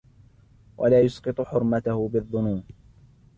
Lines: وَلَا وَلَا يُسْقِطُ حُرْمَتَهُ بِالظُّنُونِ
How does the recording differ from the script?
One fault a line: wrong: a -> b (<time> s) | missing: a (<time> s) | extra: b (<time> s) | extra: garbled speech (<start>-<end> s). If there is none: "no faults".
missing: وَلَا (1.0 s)